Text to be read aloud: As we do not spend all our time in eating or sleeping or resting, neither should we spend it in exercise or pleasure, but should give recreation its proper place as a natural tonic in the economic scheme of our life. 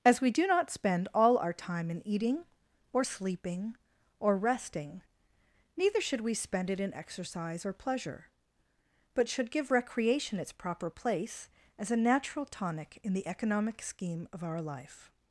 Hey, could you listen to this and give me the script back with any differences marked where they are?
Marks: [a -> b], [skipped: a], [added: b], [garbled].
As we do not spend all our time in eating or sleeping or resting, neither should we spend it in exercise or pleasure, but should give recreation its proper place as a natural tonic in the economic scheme of our life.